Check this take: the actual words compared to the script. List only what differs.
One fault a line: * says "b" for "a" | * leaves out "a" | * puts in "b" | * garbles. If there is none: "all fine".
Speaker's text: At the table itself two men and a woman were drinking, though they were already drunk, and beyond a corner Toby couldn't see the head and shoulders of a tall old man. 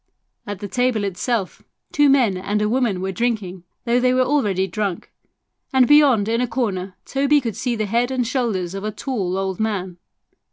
* puts in "in"
* says "could" for "couldn't"